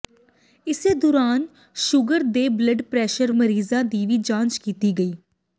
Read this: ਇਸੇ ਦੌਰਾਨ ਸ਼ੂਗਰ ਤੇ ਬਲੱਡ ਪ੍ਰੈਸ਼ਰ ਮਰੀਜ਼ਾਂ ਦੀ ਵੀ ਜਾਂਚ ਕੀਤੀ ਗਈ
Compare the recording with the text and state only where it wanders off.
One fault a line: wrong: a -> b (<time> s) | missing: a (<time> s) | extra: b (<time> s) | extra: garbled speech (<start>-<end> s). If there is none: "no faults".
no faults